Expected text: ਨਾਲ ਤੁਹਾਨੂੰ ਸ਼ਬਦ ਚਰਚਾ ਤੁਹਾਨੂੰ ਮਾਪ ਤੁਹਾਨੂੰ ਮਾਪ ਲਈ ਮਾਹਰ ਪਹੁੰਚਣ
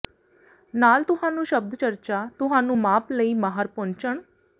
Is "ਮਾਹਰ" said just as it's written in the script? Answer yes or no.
yes